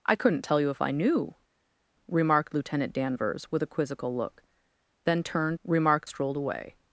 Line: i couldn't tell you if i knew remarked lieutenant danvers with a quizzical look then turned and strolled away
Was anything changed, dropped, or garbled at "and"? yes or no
yes